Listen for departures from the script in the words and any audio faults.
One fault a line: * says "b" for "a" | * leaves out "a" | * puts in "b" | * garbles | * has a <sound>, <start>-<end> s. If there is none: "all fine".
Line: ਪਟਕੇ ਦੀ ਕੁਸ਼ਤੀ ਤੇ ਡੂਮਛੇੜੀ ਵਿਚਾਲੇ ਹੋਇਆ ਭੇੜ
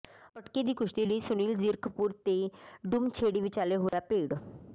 * puts in "ਲਈ ਸੁਨੀਲ ਜ਼ੀਰਕਪੁਰ"
* has a dropout, 3.9-3.9 s